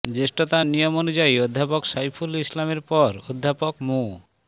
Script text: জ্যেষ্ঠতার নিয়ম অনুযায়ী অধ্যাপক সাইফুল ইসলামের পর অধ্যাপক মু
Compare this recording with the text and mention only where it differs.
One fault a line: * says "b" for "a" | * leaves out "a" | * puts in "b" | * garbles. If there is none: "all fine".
all fine